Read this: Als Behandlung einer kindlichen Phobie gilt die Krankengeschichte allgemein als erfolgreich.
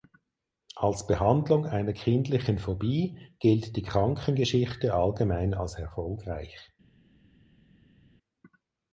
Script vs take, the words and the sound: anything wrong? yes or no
no